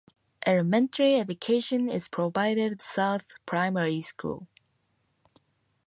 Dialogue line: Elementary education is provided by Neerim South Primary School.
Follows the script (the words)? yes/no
no